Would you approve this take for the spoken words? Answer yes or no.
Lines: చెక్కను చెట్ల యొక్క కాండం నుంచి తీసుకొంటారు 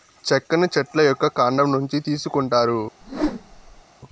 yes